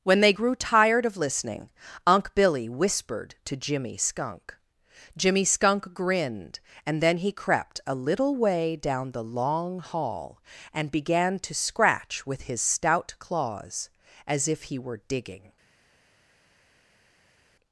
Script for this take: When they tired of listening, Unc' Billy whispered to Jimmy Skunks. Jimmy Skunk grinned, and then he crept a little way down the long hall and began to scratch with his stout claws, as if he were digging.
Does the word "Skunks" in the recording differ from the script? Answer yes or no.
yes